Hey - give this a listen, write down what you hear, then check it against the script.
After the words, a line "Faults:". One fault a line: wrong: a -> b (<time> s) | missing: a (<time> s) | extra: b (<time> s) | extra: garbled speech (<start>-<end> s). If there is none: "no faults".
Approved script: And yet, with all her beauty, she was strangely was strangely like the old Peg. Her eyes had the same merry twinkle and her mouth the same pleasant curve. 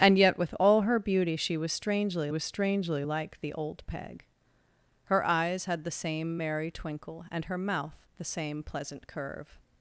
And yet, with all her beauty, she was strangely was strangely like the old Peg. Her eyes had the same merry twinkle and her mouth the same pleasant curve.
Faults:
no faults